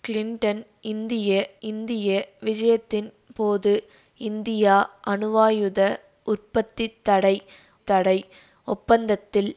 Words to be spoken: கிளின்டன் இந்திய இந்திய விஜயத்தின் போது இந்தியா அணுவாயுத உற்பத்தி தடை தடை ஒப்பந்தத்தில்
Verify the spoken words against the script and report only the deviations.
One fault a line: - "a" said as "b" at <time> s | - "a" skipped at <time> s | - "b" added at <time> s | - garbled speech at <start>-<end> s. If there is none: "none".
none